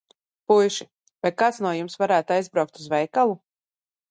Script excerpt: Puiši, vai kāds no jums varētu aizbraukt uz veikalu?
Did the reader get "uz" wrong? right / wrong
right